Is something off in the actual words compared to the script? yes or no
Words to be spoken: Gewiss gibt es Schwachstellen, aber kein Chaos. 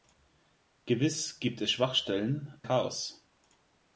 yes